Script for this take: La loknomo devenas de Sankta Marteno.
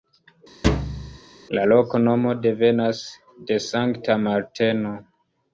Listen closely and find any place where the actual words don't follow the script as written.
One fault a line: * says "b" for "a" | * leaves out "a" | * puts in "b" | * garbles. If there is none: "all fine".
all fine